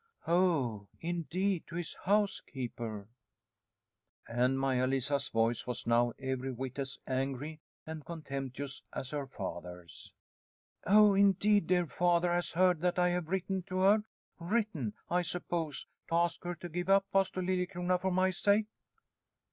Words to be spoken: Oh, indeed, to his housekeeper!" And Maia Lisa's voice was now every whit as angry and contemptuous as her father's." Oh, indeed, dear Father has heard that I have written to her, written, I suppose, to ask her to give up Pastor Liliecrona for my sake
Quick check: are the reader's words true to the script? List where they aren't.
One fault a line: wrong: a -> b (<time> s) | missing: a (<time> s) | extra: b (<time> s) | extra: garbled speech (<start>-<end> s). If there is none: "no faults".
no faults